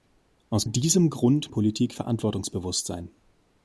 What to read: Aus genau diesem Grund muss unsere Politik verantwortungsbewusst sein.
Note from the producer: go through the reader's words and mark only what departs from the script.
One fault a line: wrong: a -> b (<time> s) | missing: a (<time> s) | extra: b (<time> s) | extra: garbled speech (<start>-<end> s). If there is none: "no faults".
missing: genau (0.7 s)
missing: muss unsere (1.5 s)